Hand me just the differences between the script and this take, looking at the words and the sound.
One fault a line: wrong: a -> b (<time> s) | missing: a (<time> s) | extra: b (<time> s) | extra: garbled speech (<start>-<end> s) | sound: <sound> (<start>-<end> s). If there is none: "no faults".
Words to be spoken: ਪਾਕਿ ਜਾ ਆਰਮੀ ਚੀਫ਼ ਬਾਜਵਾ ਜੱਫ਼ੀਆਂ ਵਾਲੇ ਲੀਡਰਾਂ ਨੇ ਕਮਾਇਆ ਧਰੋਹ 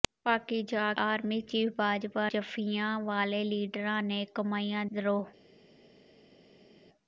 no faults